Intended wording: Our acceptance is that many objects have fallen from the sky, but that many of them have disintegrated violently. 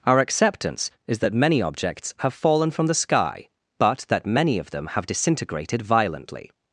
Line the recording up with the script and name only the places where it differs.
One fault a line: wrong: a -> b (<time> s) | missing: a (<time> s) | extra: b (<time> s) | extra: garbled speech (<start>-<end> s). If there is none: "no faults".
no faults